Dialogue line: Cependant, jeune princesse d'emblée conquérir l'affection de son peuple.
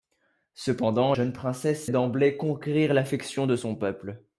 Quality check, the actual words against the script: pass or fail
pass